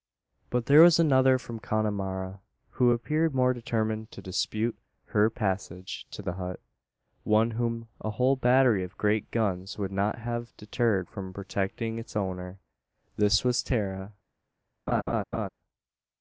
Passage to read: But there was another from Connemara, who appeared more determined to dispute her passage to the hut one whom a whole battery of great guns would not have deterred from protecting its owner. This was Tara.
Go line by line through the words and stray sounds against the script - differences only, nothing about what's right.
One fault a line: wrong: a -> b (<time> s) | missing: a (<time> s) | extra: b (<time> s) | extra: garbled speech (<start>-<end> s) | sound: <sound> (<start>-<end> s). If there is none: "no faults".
sound: laugh (14.9-15.5 s)